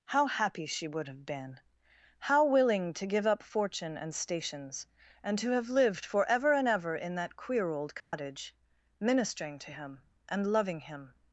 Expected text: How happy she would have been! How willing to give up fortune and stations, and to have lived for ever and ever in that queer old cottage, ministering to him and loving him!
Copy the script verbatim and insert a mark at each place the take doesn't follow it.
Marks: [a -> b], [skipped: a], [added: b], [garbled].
How happy she would have been! How willing to give up fortune and stations, and to have lived for ever and ever in that queer old cottage, ministering to him and loving him!